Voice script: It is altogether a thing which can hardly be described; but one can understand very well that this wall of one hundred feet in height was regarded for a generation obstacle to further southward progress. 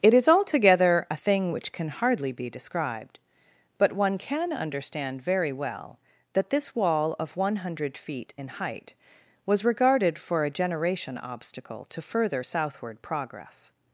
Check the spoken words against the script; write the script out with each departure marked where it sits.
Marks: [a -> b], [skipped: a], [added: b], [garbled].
It is altogether a thing which can hardly be described; but one can understand very well that this wall of one hundred feet in height was regarded for a generation obstacle to further southward progress.